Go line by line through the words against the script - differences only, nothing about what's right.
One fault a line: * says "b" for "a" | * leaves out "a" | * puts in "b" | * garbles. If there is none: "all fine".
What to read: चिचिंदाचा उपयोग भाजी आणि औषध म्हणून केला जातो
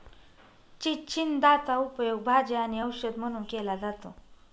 all fine